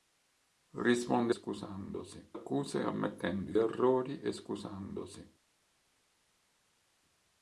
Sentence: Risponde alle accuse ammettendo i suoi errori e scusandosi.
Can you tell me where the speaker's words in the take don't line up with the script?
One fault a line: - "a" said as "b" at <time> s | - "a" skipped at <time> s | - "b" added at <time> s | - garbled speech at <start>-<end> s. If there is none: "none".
- "alle" said as "scusandosi" at 1.3 s
- "suoi" skipped at 3.5 s